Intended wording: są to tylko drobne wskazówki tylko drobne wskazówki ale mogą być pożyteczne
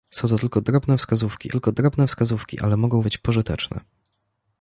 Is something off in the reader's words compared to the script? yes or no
no